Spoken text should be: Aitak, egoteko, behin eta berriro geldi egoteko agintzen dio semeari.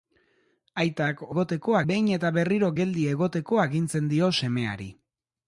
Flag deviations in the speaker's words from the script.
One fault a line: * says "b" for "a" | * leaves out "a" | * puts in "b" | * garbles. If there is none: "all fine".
all fine